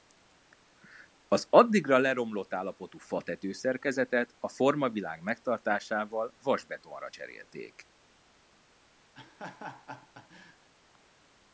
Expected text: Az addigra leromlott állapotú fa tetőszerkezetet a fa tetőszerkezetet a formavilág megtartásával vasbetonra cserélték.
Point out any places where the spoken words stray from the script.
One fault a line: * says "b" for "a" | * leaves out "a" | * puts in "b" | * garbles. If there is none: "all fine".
* leaves out "fa tetőszerkezetet a"